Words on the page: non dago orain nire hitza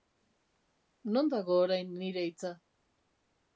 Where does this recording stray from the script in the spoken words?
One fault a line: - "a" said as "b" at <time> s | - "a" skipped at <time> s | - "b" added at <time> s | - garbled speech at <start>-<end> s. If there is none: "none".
none